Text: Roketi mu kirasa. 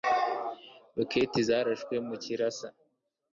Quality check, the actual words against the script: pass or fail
fail